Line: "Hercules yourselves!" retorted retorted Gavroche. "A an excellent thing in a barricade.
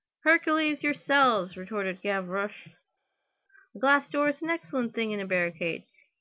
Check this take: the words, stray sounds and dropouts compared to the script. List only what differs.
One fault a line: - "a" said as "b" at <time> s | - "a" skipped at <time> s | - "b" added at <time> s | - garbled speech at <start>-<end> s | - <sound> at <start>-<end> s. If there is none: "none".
- "retorted" skipped at 2.0 s
- "glass door is" added at 3.8 s